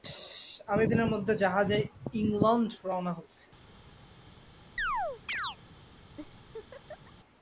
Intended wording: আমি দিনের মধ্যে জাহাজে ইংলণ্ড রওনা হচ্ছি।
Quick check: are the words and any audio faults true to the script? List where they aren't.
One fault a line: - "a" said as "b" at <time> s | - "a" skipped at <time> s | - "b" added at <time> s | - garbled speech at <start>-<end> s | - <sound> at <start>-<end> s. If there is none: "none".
- chirp at 4.8-5.6 s
- laugh at 6.2-7.1 s